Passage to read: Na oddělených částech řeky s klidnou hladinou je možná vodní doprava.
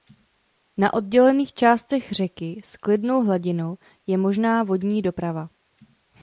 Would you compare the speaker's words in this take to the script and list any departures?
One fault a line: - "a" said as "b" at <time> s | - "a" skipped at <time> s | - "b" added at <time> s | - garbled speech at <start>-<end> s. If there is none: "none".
none